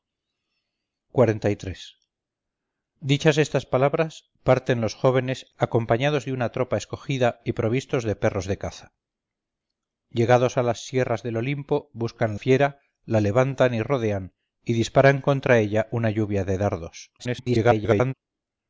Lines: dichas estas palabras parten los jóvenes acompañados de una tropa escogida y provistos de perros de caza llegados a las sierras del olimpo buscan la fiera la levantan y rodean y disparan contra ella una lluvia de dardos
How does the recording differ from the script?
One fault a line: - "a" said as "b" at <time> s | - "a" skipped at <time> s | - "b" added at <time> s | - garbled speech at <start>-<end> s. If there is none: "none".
- "la" skipped at 12.3 s
- garbled speech at 17.2-18.1 s